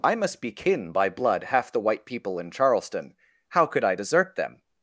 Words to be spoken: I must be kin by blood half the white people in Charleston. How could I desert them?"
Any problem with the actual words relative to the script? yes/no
no